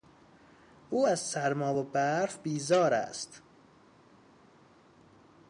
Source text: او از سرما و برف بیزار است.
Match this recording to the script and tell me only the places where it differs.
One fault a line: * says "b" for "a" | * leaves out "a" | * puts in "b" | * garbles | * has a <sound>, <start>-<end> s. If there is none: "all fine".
all fine